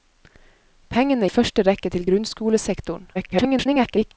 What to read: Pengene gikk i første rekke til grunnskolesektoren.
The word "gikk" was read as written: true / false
false